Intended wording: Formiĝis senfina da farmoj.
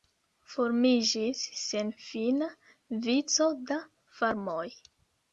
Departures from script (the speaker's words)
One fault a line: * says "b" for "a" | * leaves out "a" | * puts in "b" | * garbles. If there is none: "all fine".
* puts in "vico"